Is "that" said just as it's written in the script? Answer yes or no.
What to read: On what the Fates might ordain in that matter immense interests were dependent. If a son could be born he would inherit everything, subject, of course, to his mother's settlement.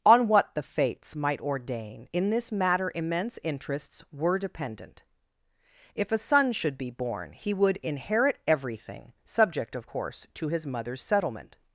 no